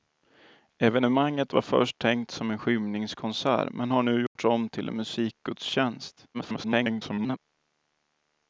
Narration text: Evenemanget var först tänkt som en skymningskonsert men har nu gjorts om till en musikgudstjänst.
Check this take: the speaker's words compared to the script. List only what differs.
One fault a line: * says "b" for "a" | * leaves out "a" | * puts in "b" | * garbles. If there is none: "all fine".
* garbles